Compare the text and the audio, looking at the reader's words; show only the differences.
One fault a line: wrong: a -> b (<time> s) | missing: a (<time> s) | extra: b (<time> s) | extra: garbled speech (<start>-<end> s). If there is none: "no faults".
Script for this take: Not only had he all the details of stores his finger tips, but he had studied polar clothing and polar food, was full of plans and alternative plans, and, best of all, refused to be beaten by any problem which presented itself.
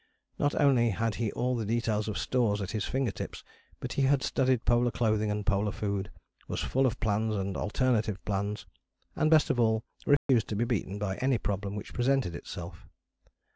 extra: at (2.6 s)